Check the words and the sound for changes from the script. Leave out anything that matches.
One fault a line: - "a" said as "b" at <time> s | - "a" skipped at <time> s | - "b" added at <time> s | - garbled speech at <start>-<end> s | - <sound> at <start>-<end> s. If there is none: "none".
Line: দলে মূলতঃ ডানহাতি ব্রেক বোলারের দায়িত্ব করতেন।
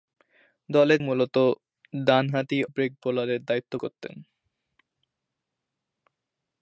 none